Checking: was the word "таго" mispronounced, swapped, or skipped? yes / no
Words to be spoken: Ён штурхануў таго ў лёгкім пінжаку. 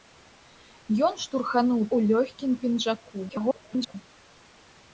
yes